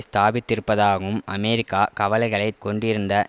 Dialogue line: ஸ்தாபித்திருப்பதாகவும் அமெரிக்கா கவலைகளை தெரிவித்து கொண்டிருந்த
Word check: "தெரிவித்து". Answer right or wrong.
wrong